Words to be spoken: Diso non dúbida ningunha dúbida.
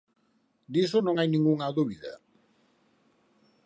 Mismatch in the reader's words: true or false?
true